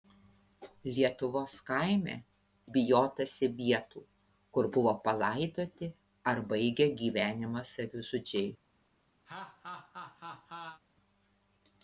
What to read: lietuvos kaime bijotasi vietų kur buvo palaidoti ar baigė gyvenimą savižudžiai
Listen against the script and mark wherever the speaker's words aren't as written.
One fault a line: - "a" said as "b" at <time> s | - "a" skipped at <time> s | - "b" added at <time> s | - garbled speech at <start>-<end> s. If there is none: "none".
none